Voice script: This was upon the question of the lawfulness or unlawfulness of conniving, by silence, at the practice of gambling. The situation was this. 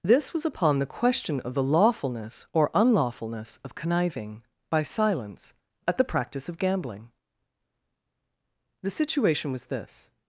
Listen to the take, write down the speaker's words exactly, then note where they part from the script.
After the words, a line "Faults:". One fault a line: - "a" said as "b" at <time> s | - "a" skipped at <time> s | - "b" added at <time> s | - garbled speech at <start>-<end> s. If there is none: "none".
This was upon the question of the lawfulness or unlawfulness of conniving, by silence, at the practice of gambling. The situation was this.
Faults:
none